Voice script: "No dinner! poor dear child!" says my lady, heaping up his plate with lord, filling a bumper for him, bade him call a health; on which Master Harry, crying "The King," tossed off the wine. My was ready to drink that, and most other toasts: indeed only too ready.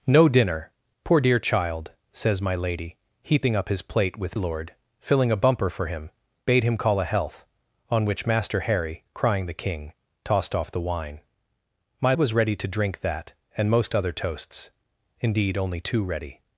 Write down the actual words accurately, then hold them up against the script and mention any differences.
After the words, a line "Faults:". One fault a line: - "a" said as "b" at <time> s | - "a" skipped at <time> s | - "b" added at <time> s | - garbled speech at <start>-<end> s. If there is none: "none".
"No dinner! poor dear child!" says my lady, heaping up his plate with lord, filling a bumper for him, bade him call a health; on which Master Harry, crying "The King," tossed off the wine. My was ready to drink that, and most other toasts: indeed only too ready.
Faults:
none